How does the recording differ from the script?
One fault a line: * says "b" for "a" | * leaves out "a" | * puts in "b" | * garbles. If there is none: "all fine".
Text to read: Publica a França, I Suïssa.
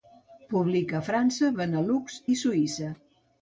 * puts in "Benelux"